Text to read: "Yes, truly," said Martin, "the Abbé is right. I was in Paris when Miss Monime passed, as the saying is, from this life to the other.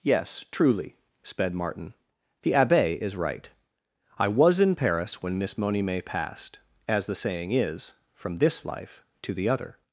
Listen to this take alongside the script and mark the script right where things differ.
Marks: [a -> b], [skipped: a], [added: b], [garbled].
"Yes, truly," [said -> sped] Martin, "the Abbé is right. I was in Paris when Miss Monime passed, as the saying is, from this life to the other.